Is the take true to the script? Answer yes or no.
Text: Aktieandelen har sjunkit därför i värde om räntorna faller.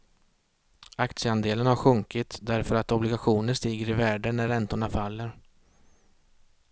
no